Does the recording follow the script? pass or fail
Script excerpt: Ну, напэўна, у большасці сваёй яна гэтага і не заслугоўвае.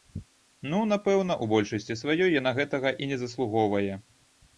pass